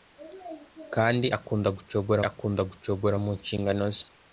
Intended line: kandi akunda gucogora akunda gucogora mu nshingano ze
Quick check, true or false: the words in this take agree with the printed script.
true